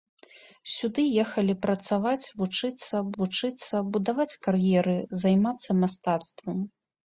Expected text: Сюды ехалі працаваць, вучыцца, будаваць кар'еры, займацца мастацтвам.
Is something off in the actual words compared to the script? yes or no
yes